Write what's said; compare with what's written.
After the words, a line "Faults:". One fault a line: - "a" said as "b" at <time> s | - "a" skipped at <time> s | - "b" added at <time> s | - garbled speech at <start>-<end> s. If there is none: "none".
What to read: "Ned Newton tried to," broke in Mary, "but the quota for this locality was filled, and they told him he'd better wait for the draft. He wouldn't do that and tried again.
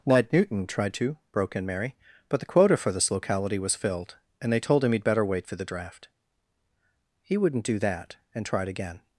"Ned Newton tried to," broke in Mary, "but the quota for this locality was filled, and they told him he'd better wait for the draft. He wouldn't do that and tried again.
Faults:
none